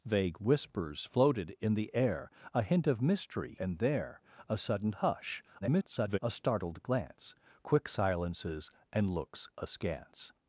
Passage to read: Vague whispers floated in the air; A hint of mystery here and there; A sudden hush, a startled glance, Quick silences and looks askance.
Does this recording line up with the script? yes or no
no